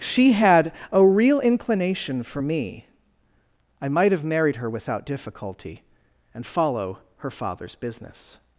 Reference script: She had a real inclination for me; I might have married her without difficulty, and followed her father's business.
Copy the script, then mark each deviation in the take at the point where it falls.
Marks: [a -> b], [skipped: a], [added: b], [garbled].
She had a real inclination for me; I might have married her without difficulty, and [followed -> follow] her father's business.